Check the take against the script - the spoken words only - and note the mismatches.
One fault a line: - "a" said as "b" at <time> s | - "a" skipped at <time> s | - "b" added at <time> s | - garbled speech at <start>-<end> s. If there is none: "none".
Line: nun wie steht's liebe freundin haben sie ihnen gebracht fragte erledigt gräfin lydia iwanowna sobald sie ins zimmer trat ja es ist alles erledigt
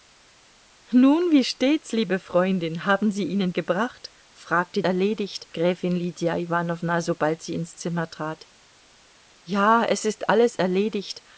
none